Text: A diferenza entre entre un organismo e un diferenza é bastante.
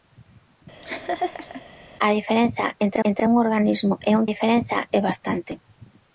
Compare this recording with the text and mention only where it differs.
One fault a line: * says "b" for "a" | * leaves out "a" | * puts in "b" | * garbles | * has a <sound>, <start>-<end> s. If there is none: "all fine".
* has a laugh, 0.8-1.6 s